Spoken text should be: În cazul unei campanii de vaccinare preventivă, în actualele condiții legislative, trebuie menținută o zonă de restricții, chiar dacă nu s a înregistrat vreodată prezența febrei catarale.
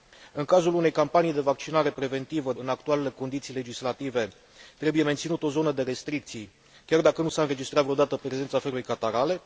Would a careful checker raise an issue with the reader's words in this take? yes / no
no